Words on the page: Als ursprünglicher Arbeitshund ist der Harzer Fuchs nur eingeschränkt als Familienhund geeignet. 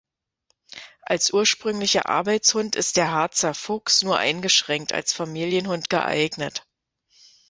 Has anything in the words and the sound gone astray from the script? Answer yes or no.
no